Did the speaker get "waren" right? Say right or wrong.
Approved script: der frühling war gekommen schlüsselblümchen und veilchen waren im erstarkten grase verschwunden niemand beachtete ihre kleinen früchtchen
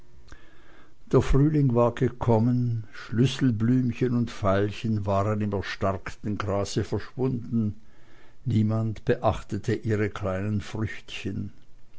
right